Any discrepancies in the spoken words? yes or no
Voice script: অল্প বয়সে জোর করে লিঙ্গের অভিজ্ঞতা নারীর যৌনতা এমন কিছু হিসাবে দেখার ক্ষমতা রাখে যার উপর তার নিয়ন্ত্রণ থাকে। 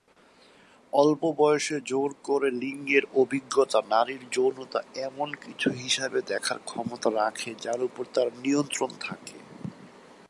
no